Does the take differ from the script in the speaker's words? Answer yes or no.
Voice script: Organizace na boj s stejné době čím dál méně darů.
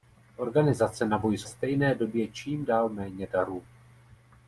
no